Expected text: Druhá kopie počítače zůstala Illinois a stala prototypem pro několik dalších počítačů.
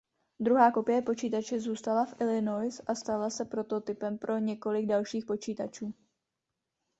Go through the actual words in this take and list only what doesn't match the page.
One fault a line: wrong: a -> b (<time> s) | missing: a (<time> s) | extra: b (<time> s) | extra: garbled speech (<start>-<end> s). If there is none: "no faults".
extra: v (2.0 s)
extra: se (3.3 s)